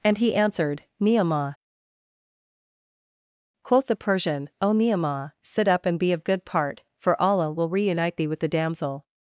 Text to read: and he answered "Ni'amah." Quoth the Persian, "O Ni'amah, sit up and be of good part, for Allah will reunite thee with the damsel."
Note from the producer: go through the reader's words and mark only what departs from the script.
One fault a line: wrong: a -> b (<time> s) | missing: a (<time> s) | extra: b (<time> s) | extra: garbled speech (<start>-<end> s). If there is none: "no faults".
no faults